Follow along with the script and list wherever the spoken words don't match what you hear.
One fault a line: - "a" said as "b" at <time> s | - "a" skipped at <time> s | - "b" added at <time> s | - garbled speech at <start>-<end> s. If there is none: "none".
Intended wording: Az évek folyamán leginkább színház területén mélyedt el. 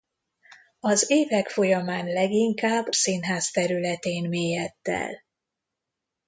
none